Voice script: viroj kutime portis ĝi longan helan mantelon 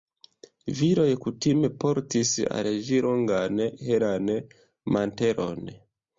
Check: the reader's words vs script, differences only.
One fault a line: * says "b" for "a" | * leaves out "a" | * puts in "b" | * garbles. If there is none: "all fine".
* puts in "al"